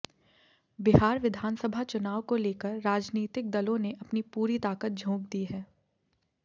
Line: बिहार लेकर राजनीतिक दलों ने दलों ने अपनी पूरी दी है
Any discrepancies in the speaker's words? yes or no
yes